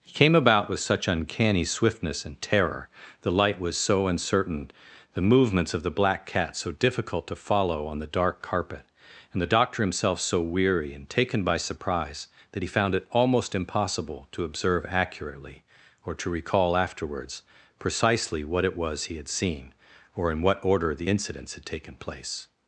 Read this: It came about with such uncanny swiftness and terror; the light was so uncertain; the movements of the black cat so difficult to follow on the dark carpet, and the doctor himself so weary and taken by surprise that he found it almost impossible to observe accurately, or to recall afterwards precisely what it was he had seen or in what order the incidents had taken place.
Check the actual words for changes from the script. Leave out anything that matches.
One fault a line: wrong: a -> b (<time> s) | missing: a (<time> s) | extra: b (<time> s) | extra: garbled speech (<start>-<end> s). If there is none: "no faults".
wrong: It -> He (0.0 s)